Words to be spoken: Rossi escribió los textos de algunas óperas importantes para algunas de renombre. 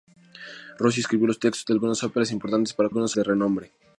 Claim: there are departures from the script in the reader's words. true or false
false